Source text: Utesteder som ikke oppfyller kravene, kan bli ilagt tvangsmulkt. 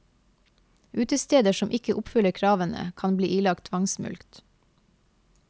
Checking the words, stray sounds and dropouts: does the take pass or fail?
pass